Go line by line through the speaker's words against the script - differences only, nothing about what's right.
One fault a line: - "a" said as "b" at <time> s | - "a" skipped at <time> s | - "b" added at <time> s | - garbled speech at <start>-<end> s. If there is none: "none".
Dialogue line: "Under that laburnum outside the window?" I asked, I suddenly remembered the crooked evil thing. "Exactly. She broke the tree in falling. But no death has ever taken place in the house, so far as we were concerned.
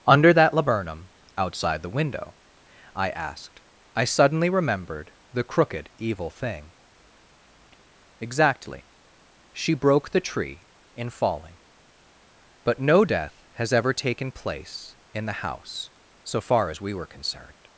none